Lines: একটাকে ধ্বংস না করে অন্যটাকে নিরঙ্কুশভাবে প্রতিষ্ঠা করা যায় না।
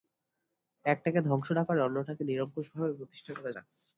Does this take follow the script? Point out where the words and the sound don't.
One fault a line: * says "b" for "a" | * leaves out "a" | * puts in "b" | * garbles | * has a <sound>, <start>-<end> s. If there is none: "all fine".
* leaves out "যায়"